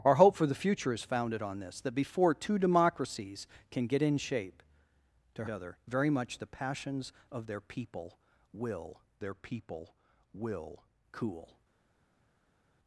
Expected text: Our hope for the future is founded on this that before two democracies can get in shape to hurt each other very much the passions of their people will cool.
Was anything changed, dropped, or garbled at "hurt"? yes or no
yes